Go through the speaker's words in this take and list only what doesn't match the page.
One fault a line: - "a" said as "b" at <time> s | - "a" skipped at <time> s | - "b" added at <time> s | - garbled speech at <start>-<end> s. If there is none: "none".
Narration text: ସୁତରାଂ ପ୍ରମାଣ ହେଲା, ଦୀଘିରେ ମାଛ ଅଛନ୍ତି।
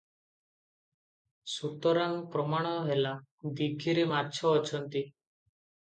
none